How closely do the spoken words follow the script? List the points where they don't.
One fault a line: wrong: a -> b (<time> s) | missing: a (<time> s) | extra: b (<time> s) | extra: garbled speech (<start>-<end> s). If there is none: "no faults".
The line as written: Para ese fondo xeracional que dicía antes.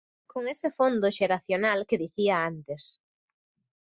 wrong: Para -> Con (0.2 s)